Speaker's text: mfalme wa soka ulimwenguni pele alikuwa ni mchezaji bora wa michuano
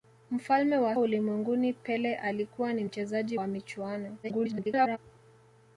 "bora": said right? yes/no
no